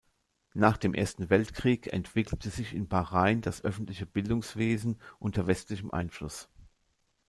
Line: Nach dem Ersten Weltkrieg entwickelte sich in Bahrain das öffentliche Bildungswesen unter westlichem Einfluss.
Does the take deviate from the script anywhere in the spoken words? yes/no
no